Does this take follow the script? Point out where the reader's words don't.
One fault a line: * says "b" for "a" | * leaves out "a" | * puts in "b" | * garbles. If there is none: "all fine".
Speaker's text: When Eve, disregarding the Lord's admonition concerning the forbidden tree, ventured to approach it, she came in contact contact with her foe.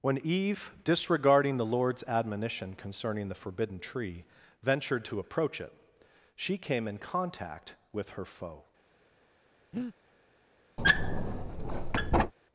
* leaves out "contact"